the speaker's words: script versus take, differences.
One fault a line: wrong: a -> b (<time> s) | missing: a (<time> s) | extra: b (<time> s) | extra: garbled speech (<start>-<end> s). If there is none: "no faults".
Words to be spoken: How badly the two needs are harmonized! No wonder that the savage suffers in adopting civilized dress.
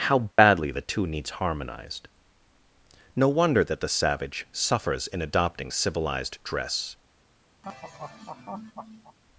missing: are (1.3 s)